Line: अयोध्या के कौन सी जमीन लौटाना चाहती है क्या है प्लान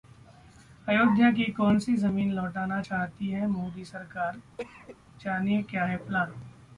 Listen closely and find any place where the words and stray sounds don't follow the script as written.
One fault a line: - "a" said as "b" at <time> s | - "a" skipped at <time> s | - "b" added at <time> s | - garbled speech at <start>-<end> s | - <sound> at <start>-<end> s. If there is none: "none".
- "के" said as "की" at 1.3 s
- "मोदी सरकार जानिए" added at 3.5 s
- cough at 4.6-5.0 s